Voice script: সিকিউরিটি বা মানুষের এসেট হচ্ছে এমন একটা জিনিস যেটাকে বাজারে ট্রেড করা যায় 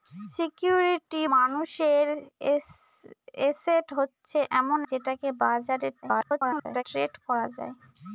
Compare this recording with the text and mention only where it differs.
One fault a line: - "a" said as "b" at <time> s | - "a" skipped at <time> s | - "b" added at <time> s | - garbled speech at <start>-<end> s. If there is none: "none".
- "বা" skipped at 1.2 s
- "একটা জিনিস" skipped at 4.8 s
- garbled speech at 6.0-6.8 s